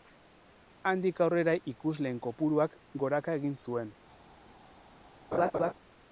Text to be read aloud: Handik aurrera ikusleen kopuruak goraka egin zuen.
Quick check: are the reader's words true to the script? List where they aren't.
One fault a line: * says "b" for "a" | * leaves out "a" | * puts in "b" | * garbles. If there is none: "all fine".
all fine